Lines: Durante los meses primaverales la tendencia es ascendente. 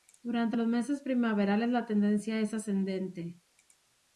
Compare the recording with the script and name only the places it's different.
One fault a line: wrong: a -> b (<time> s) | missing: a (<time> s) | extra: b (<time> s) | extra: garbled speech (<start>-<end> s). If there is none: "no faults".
no faults